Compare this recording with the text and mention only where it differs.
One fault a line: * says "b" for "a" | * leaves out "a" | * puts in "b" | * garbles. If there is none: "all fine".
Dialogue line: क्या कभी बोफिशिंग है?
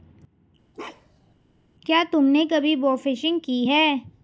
* puts in "तुमने"
* puts in "की"